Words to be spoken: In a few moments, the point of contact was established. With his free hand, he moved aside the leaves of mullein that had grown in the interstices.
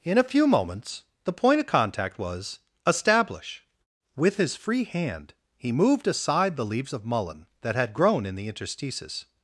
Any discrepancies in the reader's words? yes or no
yes